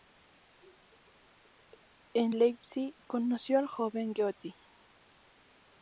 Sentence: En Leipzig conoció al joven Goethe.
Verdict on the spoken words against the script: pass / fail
pass